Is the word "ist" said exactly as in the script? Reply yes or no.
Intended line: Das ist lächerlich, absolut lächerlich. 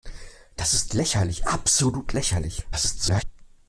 yes